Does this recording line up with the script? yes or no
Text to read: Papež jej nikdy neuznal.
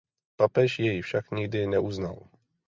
no